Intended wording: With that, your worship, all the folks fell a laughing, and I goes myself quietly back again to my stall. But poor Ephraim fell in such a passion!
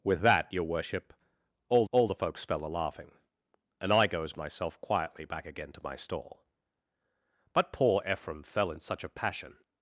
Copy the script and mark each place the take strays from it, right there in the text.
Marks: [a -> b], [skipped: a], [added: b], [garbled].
With that, your worship, all [added: all] the folks fell a laughing, and I goes myself quietly back again to my stall. But poor Ephraim fell in such a passion!